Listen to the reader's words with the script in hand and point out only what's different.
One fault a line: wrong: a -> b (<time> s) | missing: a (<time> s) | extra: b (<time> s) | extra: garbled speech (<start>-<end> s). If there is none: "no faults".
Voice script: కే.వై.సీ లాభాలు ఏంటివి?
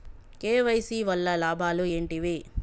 extra: వల్ల (1.0 s)